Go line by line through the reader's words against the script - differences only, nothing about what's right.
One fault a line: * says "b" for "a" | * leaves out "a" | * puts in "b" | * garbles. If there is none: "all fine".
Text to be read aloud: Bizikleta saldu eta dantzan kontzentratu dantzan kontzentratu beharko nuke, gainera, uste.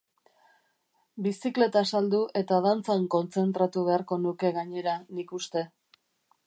* leaves out "dantzan kontzentratu"
* puts in "nik"